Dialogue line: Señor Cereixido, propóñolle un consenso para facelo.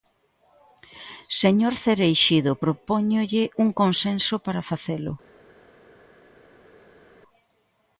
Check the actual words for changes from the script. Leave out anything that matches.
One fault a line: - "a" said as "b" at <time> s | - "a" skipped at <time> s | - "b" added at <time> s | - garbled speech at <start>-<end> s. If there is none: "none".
none